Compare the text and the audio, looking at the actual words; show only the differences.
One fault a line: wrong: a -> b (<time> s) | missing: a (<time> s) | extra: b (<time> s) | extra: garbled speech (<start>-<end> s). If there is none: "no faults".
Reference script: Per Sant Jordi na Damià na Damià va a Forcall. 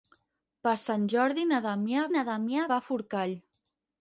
no faults